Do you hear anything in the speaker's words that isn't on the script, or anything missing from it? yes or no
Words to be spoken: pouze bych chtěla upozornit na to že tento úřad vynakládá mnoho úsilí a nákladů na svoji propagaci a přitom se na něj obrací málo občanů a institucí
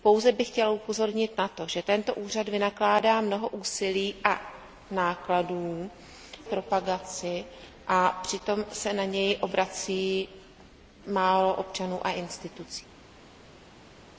yes